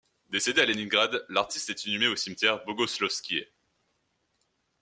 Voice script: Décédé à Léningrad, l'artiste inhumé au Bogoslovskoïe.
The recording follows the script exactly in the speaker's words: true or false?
false